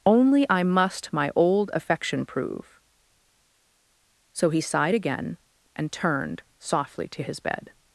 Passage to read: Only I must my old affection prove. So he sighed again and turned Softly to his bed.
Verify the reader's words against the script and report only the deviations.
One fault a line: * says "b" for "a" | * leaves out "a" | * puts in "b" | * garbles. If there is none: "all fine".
all fine